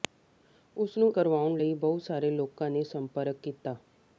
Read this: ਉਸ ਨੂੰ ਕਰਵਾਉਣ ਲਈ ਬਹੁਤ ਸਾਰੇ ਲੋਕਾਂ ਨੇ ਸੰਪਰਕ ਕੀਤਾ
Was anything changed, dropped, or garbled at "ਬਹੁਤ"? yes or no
no